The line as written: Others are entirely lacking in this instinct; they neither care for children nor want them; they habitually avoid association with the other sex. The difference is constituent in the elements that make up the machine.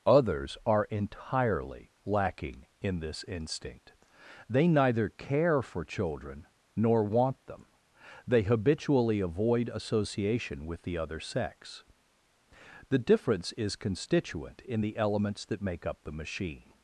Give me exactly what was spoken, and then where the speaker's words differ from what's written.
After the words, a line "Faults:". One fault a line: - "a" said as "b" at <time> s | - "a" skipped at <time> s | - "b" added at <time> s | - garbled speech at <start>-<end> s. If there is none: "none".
Others are entirely lacking in this instinct; they neither care for children nor want them; they habitually avoid association with the other sex. The difference is constituent in the elements that make up the machine.
Faults:
none